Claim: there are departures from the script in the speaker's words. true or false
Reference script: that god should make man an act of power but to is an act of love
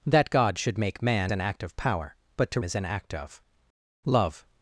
false